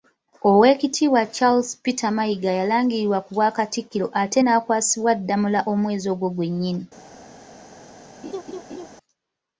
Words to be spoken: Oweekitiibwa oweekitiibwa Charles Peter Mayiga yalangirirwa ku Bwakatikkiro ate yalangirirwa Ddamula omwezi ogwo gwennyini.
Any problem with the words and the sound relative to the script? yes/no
yes